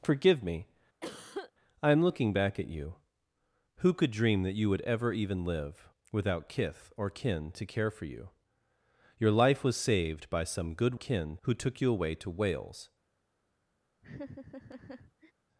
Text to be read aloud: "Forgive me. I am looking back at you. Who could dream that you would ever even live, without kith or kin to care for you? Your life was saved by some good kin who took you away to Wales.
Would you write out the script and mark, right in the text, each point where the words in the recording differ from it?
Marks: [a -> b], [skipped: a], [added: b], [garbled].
"Forgive me. I am looking back at you. Who could dream that you would ever even live, without kith or kin to care for you? Your life was saved by some good kin who took you away to Wales.